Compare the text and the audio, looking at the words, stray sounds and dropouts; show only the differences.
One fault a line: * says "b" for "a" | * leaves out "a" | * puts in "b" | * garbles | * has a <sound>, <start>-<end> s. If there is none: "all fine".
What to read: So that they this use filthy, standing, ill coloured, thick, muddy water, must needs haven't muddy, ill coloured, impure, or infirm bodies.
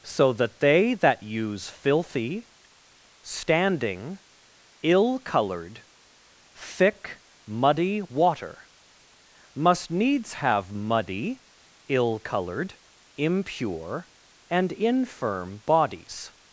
* says "that" for "this"
* says "have" for "haven't"
* says "and" for "or"